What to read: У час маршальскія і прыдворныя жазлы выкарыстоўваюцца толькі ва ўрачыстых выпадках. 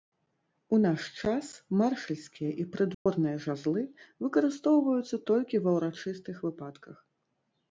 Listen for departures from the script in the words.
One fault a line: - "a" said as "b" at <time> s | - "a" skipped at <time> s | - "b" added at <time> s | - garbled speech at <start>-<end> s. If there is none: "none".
- "наш" added at 0.8 s